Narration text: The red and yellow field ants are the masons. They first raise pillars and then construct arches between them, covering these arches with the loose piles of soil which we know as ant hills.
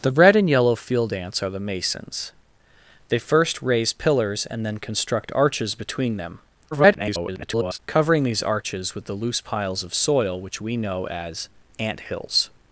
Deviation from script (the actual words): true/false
true